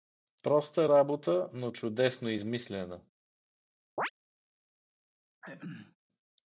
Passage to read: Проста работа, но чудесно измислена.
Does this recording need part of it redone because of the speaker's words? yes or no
no